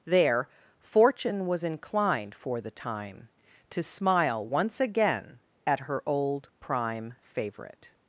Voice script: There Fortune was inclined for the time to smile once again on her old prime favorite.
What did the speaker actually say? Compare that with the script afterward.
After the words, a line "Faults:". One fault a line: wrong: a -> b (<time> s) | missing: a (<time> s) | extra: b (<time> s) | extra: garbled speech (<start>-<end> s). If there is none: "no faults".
There Fortune was inclined for the time to smile once again at her old prime favorite.
Faults:
wrong: on -> at (5.7 s)